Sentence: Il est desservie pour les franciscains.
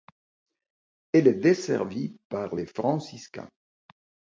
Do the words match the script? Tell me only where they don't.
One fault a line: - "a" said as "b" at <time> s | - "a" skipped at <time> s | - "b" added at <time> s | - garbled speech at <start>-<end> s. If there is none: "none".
- "Il" said as "Elle" at 1.1 s
- "pour" said as "par" at 2.3 s